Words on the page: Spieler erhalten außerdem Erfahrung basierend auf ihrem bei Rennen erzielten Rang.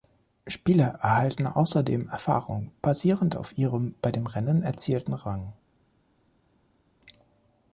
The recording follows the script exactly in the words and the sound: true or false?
false